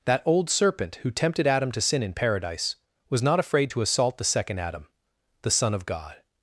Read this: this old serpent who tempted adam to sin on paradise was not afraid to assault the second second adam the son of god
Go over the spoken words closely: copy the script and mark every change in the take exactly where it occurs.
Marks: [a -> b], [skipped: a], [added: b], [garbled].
[this -> that] old serpent who tempted adam to sin [on -> in] paradise was not afraid to assault the second [skipped: second] adam the son of god